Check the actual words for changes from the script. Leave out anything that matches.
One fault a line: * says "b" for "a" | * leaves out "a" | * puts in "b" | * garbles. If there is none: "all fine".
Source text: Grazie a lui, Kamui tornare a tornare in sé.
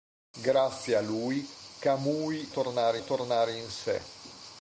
all fine